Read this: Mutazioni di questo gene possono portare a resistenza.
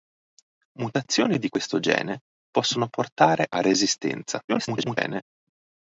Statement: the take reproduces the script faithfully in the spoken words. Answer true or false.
false